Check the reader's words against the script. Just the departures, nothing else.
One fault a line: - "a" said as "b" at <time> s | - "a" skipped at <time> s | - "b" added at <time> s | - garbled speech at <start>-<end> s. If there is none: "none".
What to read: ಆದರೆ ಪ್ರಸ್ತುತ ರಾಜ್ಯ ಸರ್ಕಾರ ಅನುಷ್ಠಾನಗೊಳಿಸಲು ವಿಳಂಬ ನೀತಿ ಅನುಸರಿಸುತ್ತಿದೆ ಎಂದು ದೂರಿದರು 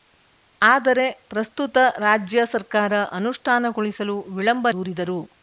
- "ನೀತಿ ಅನುಸರಿಸುತ್ತಿದೆ ಎಂದು" skipped at 4.7 s